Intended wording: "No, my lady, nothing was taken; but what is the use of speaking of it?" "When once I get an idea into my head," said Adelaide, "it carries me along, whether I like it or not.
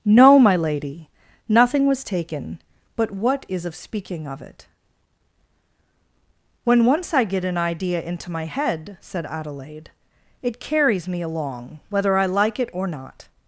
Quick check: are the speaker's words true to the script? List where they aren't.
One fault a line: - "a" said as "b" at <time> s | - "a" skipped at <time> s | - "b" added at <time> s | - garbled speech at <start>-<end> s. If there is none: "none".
- "the use" skipped at 3.6 s